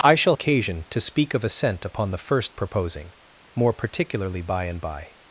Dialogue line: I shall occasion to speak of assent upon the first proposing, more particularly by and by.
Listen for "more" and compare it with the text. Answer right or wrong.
right